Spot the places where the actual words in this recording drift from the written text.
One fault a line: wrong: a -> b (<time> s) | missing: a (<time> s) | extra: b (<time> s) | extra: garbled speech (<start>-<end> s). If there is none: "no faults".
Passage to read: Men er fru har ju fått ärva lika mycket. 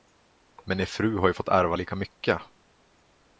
no faults